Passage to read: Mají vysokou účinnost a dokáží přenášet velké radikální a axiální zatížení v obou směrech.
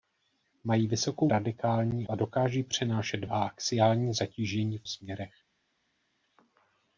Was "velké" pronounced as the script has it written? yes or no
no